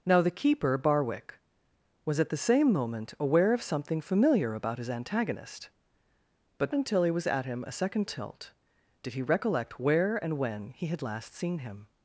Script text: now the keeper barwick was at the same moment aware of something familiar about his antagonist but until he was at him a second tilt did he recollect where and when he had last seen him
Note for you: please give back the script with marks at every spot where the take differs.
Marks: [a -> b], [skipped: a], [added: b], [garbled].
now the keeper barwick was at the same moment aware of something familiar about his antagonist but until he was at him a second tilt did he recollect where and when he had last seen him